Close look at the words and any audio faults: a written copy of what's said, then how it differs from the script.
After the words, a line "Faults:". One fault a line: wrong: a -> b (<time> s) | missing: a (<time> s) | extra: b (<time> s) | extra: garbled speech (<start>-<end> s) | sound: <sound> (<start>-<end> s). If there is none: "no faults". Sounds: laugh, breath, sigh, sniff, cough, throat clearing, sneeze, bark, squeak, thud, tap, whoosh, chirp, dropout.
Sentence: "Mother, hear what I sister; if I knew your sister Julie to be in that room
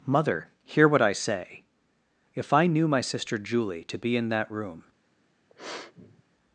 "Mother, hear what I say; if I knew my sister Julie to be in that room
Faults:
wrong: sister -> say (1.1 s)
wrong: your -> my (2.9 s)
sound: sniff (5.5-6.2 s)